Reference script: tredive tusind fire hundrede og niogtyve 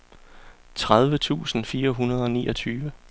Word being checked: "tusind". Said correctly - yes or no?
yes